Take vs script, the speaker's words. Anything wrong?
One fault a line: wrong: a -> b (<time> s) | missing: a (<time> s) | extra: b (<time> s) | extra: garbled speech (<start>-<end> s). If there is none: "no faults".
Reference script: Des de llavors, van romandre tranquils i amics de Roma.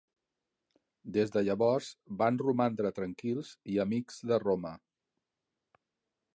no faults